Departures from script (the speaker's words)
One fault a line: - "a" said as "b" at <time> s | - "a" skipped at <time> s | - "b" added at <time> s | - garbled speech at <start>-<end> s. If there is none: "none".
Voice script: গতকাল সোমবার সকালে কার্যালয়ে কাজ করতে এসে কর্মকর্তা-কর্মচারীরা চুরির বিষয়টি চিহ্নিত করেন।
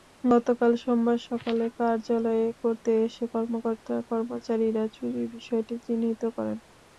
- "কাজ" skipped at 2.5 s